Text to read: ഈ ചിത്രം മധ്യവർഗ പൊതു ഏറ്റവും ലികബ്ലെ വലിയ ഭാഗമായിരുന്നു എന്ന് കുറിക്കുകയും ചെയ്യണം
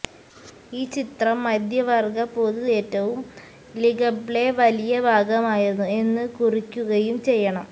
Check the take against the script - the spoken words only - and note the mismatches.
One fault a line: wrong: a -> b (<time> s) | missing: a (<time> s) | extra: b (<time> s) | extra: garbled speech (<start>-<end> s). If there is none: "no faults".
no faults